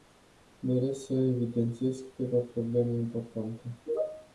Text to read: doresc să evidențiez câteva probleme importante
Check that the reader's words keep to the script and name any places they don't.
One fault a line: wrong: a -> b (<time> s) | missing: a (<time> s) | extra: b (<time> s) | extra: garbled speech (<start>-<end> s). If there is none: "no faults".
no faults